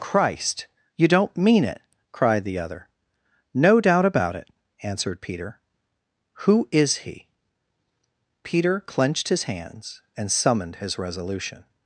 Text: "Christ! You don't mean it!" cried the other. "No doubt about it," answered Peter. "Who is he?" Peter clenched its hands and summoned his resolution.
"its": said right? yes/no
no